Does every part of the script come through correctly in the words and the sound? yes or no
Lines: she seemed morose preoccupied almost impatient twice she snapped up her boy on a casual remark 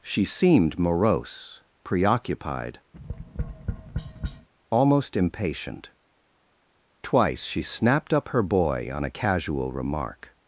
no